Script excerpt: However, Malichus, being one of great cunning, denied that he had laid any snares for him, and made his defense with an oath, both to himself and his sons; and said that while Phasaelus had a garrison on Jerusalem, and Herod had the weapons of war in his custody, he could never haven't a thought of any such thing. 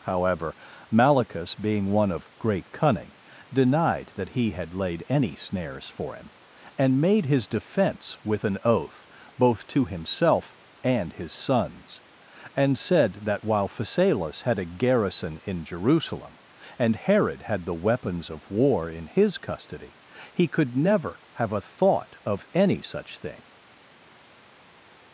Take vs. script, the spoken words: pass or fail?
fail